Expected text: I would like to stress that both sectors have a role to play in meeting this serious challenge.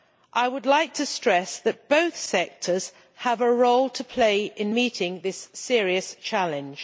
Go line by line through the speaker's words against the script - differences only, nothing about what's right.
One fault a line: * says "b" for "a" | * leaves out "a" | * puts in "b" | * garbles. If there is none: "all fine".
all fine